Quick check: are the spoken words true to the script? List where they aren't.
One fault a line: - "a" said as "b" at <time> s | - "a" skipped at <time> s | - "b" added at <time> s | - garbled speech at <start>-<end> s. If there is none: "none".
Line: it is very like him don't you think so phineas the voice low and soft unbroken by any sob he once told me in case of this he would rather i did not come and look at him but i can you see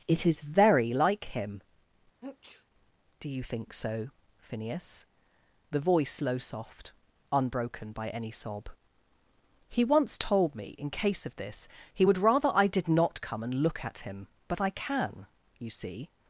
- "don't" said as "do" at 3.2 s
- "and" skipped at 6.4 s